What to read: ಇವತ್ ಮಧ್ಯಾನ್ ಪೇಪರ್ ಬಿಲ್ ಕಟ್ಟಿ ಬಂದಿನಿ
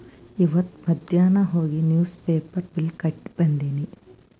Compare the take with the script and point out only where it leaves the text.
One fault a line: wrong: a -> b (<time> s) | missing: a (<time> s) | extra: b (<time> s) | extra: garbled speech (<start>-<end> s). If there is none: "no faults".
extra: ಹೋಗಿ ನಿವ್ಸ್ (1.4 s)